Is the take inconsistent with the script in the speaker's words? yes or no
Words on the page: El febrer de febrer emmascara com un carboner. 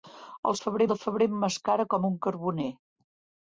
no